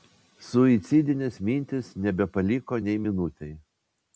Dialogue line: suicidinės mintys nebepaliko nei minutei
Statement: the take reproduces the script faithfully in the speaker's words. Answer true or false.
true